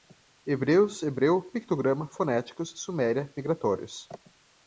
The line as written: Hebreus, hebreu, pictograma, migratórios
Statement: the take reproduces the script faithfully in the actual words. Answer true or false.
false